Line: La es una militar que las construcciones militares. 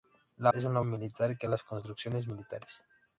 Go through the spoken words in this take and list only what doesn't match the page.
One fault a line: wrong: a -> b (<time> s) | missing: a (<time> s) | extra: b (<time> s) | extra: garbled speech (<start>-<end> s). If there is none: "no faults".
no faults